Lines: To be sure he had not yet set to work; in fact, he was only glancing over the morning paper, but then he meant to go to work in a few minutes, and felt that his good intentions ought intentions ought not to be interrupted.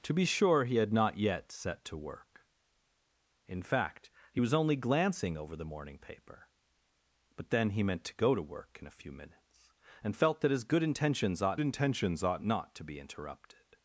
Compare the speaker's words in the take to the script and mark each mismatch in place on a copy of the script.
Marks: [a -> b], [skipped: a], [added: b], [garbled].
To be sure he had not yet set to work; in fact, he was only glancing over the morning paper, but then he meant to go to work in a few minutes, and felt that his good intentions ought intentions ought not to be interrupted.